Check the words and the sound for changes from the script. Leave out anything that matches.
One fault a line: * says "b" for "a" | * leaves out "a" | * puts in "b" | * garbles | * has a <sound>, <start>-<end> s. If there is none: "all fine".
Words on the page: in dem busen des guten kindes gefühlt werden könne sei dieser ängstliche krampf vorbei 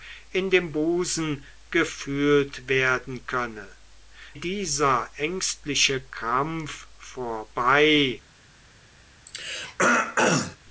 * leaves out "des guten kindes"
* leaves out "sei"
* has a throat clearing, 9.3-10.6 s